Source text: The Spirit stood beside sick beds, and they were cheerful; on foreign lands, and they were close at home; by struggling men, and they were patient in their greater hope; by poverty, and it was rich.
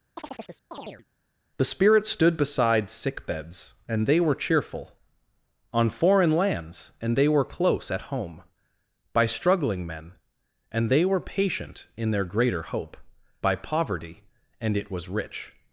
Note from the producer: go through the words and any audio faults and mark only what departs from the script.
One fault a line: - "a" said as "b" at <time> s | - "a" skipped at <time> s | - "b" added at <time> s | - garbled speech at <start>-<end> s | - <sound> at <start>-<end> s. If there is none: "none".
- chirp at 0.2-1.1 s